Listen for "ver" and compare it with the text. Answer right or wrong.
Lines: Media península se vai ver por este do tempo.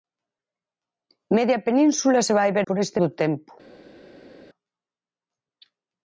right